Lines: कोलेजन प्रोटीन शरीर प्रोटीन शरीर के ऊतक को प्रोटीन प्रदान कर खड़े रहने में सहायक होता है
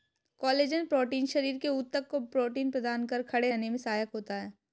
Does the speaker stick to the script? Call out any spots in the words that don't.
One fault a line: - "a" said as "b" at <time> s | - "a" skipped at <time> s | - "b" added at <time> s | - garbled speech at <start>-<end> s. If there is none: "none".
- "प्रोटीन शरीर" skipped at 1.6 s